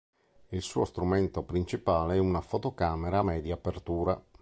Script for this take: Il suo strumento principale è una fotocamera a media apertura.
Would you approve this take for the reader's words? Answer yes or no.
yes